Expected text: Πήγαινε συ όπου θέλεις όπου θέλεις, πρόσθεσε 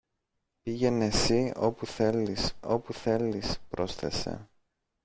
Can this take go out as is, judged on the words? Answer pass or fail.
pass